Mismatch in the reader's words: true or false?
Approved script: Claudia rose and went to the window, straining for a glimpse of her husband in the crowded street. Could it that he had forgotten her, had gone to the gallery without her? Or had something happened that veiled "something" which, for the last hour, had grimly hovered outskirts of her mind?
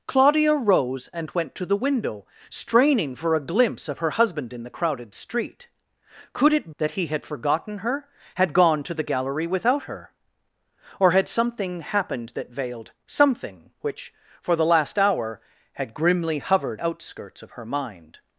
false